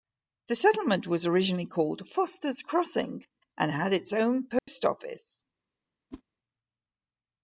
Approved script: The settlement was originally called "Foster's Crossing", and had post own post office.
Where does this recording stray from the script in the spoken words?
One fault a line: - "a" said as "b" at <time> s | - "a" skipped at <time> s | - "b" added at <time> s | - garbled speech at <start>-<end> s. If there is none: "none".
- "post" said as "its" at 3.9 s